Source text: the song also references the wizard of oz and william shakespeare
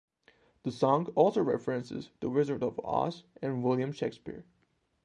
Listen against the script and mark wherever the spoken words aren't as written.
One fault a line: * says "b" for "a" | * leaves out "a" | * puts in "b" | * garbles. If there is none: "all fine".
all fine